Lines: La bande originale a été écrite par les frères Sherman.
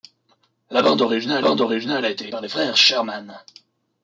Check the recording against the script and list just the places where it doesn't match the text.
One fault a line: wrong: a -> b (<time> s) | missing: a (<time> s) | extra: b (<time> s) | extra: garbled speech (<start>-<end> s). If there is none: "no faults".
extra: bande originale (1.4 s)
missing: écrite (2.3 s)